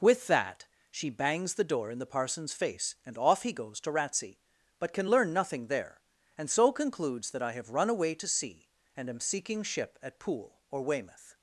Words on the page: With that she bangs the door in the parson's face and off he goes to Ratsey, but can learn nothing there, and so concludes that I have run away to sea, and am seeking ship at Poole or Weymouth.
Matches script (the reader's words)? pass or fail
pass